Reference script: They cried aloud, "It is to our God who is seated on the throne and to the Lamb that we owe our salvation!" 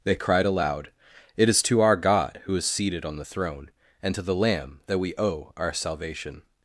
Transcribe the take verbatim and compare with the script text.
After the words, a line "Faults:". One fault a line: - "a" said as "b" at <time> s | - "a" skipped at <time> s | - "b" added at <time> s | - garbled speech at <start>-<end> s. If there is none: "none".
They cried aloud, "It is to our God who is seated on the throne and to the Lamb that we owe our salvation!"
Faults:
none